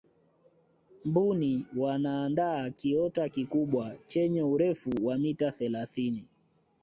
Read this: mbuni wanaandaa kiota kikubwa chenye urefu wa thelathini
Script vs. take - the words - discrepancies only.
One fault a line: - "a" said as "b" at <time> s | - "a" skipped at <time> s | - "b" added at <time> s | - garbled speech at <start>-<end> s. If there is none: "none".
- "mita" added at 5.2 s